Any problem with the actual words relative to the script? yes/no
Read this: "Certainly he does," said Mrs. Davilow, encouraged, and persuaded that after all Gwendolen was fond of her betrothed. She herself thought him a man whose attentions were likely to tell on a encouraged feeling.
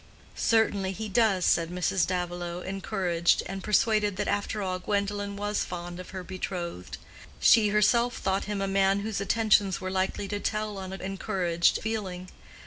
no